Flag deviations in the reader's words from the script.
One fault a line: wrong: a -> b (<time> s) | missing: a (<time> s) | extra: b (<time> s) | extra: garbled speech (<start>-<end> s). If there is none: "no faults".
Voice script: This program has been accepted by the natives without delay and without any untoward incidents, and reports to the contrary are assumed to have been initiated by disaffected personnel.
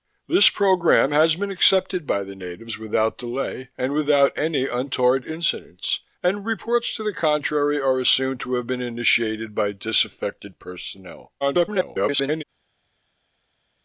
extra: garbled speech (11.4-12.4 s)